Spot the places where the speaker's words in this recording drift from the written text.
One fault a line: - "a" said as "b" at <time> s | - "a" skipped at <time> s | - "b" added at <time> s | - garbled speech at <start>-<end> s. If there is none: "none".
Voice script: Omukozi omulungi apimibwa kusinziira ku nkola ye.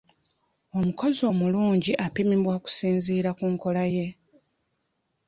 none